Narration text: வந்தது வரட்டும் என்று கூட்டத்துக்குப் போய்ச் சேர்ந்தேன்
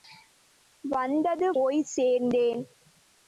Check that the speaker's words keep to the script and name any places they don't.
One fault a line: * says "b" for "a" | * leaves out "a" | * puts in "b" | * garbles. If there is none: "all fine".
* leaves out "வரட்டும் என்று கூட்டத்துக்குப்"